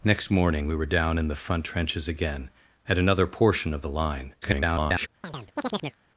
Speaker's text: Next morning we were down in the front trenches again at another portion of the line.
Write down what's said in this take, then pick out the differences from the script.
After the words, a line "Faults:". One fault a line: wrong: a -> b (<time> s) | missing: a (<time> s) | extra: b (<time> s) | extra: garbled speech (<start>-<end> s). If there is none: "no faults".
Next morning we were down in the front trenches again at another portion of the line. [garbled]
Faults:
extra: garbled speech (4.4-5.1 s)